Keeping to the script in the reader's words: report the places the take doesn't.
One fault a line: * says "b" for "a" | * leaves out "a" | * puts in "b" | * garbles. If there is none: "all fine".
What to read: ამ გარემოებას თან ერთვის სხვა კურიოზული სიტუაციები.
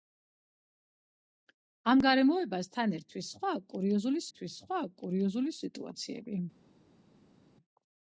* puts in "ერთვის სხვა კურიოზული"